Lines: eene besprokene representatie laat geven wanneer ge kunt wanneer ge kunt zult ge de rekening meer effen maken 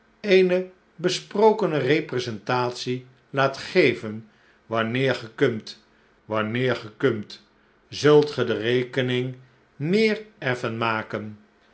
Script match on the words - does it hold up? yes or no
yes